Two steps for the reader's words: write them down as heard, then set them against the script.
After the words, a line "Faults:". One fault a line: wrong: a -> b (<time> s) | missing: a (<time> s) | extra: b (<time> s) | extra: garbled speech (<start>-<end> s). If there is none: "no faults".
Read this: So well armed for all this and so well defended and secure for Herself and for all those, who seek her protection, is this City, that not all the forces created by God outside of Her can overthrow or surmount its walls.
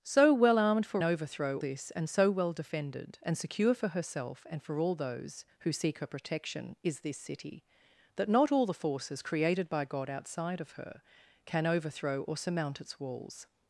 So well armed for overthrow this and so well defended and secure for Herself and for all those, who seek her protection, is this City, that not all the forces created by God outside of Her can overthrow or surmount its walls.
Faults:
wrong: all -> overthrow (1.0 s)